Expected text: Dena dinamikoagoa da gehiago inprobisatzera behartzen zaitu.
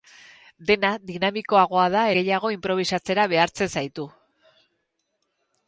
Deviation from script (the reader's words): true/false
false